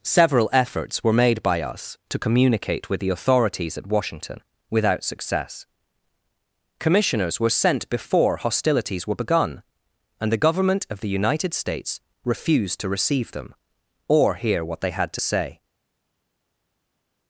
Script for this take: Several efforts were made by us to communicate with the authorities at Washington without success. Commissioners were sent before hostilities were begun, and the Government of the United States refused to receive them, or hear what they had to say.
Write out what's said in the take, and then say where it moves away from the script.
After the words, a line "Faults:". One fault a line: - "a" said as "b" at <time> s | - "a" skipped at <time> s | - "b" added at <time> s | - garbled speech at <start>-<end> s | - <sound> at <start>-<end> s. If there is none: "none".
Several efforts were made by us to communicate with the authorities at Washington without success. Commissioners were sent before hostilities were begun, and the Government of the United States refused to receive them, or hear what they had to say.
Faults:
none